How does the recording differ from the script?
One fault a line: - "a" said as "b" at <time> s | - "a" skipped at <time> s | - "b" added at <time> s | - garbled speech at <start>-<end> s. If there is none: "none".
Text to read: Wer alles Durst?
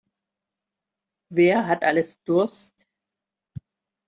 - "hat" added at 1.7 s